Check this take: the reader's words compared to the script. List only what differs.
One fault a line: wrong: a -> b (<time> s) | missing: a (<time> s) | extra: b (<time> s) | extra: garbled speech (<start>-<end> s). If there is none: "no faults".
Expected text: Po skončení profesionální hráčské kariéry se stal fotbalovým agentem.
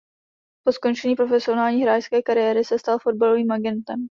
no faults